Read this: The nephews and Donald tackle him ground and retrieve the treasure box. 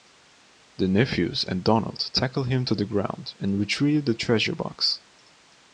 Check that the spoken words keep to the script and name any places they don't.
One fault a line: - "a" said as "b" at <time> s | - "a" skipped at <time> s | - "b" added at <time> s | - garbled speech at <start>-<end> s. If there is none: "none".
- "to the" added at 2.6 s